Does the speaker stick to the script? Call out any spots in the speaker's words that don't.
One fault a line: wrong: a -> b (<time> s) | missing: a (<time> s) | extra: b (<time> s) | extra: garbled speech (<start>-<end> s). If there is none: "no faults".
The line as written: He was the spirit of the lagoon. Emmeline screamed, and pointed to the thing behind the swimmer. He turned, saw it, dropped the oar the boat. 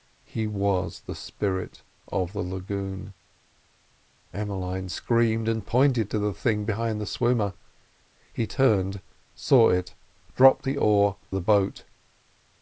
no faults